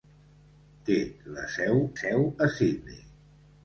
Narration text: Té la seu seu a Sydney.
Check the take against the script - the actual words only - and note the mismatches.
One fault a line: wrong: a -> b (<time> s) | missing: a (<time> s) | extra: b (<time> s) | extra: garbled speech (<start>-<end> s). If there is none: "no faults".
no faults